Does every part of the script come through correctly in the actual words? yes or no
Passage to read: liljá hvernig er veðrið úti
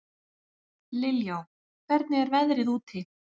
yes